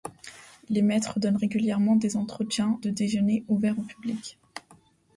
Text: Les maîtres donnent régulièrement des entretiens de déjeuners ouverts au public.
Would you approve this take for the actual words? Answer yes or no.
yes